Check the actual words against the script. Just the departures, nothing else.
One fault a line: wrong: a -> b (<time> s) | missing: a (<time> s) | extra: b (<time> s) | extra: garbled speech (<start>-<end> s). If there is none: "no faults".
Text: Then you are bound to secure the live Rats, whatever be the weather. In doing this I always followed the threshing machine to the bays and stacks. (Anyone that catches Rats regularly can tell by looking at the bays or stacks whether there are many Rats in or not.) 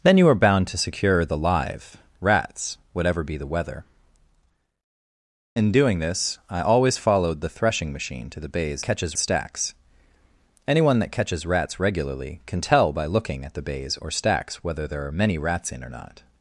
wrong: and -> catches (8.8 s)